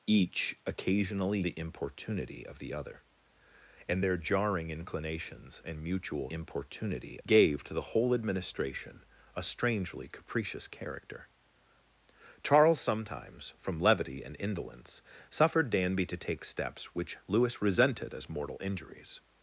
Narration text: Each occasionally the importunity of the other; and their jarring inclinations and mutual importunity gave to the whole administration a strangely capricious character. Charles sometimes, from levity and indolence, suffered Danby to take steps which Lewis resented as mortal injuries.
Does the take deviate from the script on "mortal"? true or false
false